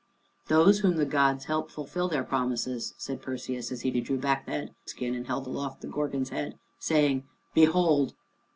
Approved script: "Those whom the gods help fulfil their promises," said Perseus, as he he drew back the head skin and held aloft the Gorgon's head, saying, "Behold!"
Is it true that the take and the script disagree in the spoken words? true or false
false